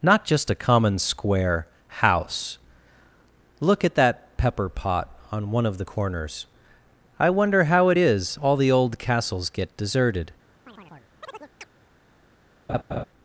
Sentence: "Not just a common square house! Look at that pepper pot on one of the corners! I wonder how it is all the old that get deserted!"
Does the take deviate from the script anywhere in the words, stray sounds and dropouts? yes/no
yes